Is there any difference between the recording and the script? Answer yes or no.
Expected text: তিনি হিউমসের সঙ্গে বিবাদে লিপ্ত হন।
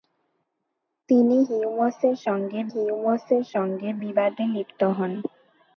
yes